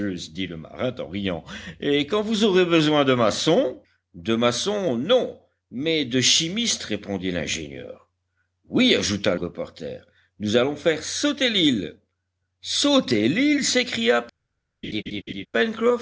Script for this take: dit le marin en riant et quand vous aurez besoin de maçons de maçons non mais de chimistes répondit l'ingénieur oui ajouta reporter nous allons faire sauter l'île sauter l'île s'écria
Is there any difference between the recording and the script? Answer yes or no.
no